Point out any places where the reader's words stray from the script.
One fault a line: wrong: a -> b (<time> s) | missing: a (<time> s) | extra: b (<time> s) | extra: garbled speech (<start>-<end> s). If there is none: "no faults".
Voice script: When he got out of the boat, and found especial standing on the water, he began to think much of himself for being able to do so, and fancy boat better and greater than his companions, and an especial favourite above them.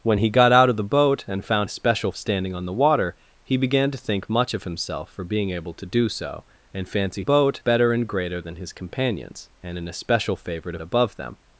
no faults